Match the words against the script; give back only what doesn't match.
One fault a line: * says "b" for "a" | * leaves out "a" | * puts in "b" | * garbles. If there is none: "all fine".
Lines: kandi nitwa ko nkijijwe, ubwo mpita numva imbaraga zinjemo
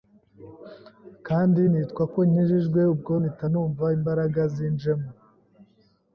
all fine